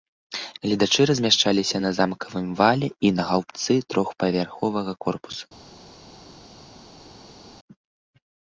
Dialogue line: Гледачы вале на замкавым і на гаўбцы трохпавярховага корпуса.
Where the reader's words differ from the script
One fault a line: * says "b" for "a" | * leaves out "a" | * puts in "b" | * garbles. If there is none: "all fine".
* says "размяшчаліся" for "вале"
* puts in "вале"